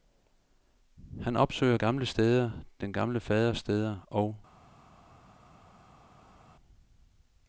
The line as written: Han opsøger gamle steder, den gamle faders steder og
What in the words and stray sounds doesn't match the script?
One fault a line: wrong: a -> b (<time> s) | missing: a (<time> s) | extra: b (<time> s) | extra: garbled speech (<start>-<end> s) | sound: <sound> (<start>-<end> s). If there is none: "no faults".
no faults